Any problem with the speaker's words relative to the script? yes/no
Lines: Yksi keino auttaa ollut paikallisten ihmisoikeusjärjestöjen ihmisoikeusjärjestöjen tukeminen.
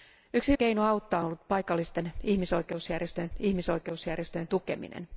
no